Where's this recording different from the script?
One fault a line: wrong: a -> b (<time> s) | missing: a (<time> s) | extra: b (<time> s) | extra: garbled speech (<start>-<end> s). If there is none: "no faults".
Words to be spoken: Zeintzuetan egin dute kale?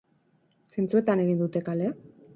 no faults